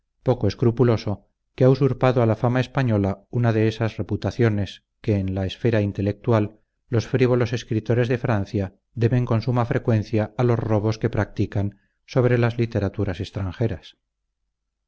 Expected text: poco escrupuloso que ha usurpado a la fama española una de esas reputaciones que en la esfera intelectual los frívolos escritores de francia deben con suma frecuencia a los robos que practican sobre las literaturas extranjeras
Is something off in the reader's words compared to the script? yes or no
no